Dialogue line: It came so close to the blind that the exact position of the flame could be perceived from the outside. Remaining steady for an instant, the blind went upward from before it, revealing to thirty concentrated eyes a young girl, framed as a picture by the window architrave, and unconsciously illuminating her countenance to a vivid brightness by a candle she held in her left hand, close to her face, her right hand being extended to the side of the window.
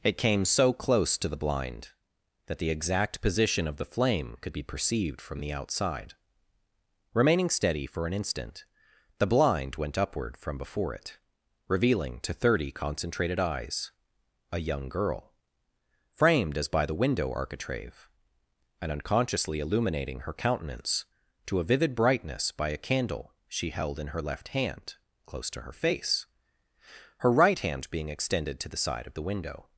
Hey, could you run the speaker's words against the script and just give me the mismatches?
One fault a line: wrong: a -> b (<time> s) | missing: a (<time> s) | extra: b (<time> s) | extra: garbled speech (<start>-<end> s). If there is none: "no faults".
missing: a picture (16.7 s)